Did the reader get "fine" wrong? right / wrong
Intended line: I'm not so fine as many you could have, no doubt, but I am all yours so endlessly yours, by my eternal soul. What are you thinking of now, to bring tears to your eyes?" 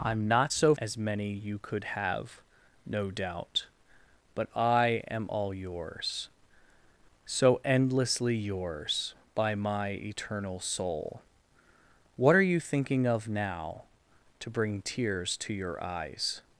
wrong